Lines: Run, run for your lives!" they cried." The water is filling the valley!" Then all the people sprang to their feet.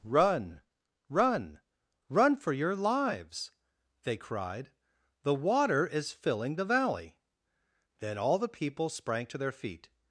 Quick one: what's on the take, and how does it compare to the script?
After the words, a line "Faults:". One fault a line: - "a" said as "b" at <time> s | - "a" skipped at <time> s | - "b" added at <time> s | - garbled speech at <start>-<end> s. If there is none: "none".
Run, run run for your lives!" they cried." The water is filling the valley!" Then all the people sprang to their feet.
Faults:
- "run" added at 2.1 s